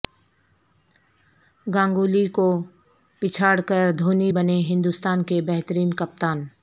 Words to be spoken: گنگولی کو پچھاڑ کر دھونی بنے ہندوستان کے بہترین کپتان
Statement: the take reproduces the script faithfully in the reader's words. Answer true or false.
true